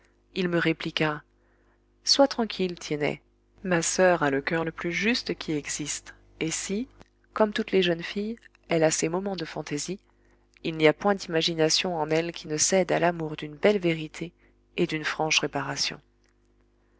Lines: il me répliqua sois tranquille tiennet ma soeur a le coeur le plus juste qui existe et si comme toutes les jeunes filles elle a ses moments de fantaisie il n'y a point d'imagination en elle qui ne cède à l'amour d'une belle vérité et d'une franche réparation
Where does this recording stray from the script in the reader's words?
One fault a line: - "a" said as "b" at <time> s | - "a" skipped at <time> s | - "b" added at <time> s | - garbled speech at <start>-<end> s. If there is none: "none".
none